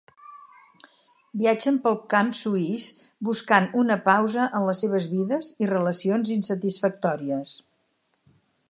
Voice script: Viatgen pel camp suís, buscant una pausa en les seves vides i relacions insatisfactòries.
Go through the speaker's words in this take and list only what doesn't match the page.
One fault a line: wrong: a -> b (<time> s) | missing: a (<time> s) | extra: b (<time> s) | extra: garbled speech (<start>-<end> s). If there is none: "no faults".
no faults